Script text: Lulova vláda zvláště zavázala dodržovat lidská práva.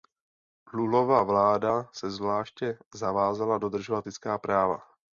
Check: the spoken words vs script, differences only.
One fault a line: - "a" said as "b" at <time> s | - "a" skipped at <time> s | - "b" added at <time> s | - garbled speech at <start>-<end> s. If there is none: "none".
- "se" added at 1.9 s